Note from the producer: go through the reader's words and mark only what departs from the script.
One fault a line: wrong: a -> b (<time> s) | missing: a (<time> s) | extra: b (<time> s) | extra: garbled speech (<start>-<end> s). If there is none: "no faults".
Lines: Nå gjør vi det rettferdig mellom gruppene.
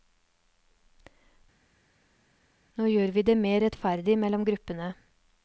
extra: mer (3.4 s)